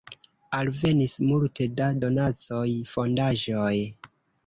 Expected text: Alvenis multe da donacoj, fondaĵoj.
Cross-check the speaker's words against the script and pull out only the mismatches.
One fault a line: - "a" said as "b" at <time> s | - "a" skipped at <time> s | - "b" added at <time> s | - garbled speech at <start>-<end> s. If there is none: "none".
none